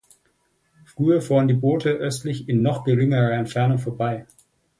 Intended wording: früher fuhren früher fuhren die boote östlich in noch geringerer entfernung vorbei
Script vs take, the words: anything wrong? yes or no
yes